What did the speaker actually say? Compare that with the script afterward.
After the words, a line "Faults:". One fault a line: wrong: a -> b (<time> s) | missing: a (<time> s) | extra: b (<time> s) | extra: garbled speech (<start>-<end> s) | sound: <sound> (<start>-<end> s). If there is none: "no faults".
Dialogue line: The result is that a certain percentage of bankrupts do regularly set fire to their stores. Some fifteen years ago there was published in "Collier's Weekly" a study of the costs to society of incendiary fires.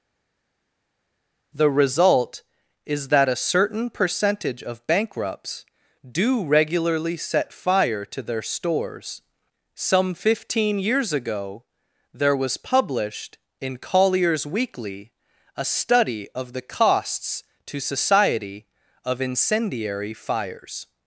The result is that a certain percentage of bankrupts do regularly set fire to their stores. Some fifteen years ago there was published in "Collier's Weekly" a study of the costs to society of incendiary fires.
Faults:
no faults